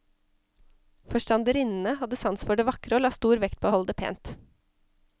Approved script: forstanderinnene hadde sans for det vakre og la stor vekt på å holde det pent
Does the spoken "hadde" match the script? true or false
true